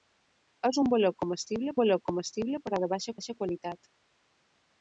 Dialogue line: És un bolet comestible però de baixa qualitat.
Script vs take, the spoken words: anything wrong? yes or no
yes